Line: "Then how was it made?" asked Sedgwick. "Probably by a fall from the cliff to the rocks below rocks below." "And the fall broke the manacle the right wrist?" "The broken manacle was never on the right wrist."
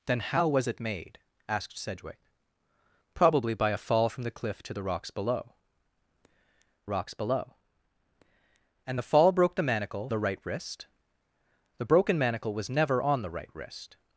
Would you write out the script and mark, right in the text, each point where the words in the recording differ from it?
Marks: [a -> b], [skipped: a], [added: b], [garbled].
"Then how was it made?" asked Sedgwick. "Probably by a fall from the cliff to the rocks below rocks below." "And the fall broke the manacle the right wrist?" "The broken manacle was never on the right wrist."